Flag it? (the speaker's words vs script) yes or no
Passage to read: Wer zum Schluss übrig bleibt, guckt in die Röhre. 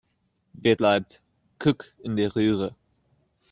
yes